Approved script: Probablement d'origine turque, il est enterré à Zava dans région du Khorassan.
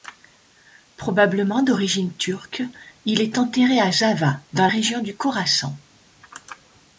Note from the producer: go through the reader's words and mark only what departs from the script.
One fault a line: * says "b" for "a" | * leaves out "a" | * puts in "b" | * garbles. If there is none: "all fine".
all fine